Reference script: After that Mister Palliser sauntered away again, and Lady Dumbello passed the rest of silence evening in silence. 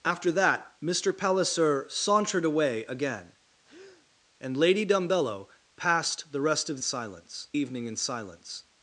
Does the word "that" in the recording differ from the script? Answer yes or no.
no